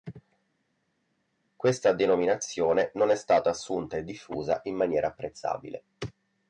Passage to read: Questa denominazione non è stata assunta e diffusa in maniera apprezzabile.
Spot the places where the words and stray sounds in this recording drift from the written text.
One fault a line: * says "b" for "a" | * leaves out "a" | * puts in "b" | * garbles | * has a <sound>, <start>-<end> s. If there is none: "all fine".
all fine